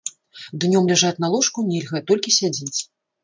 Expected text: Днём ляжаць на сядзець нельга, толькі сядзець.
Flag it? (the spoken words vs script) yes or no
yes